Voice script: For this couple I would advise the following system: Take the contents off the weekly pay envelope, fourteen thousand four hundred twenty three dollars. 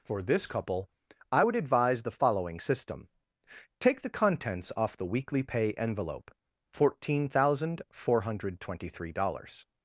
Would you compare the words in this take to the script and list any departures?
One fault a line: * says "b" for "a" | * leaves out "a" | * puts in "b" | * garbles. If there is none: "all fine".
all fine